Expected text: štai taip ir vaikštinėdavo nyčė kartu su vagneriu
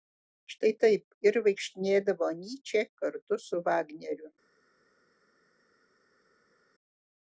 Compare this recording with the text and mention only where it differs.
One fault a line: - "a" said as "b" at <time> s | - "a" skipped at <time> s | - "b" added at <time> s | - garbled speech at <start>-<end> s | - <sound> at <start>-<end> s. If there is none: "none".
none